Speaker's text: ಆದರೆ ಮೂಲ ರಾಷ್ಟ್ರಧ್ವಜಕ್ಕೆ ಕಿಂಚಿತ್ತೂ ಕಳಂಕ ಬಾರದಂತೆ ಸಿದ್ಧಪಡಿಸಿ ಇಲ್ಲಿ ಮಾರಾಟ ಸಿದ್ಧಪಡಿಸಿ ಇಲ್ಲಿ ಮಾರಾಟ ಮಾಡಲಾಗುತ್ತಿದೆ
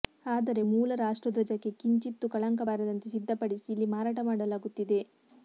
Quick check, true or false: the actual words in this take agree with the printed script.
false